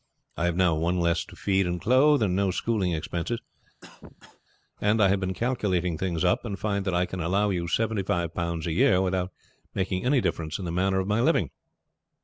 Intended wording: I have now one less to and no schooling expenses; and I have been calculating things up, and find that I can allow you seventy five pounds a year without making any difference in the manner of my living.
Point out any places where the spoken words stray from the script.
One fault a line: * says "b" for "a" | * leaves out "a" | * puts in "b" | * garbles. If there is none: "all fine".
* puts in "feed and clothe"